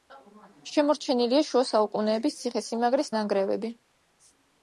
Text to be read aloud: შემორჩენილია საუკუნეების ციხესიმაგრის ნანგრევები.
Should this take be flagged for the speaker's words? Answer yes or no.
yes